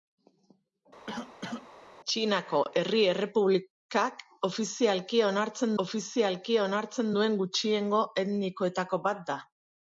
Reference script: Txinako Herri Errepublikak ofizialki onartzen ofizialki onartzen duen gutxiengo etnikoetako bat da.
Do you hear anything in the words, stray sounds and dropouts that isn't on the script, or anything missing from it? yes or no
yes